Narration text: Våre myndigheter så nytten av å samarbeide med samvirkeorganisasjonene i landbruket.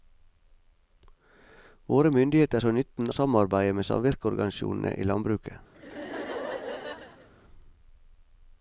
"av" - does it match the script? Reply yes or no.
no